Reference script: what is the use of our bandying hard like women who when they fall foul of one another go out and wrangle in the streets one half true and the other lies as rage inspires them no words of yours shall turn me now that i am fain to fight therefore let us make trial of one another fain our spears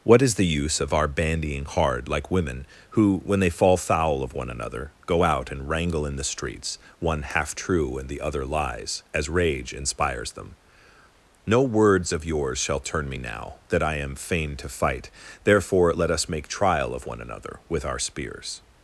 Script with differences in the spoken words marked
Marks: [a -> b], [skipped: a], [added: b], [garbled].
what is the use of our bandying hard like women who when they fall foul of one another go out and wrangle in the streets one half true and the other lies as rage inspires them no words of yours shall turn me now that i am fain to fight therefore let us make trial of one another [fain -> with] our spears